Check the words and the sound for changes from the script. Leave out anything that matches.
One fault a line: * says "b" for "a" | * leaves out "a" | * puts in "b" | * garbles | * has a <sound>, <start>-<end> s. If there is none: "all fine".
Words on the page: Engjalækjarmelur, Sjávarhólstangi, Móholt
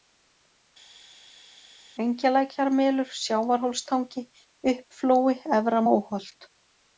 * puts in "Uppflói Efra"